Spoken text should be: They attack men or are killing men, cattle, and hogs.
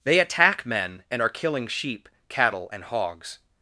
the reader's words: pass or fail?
fail